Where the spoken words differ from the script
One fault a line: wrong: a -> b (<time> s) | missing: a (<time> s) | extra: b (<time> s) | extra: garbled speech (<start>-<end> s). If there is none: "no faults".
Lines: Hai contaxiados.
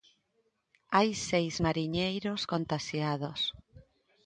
extra: seis mariñeiros (1.3 s)